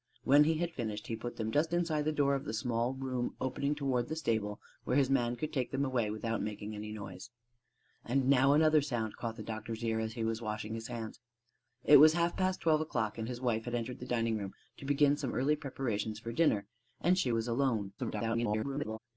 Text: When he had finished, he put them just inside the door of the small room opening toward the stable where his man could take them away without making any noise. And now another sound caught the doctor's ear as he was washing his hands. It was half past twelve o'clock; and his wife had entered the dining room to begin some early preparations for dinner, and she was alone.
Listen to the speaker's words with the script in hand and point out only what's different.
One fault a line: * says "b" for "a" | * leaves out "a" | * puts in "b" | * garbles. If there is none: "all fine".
* garbles